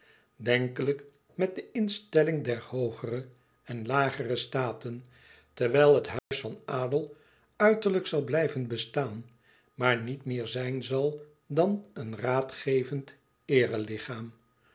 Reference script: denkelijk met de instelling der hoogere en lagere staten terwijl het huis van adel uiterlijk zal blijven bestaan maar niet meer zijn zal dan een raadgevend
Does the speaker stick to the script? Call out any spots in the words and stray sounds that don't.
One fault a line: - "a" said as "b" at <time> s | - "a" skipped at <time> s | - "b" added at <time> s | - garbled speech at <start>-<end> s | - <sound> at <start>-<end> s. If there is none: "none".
- dropout at 6.2-6.3 s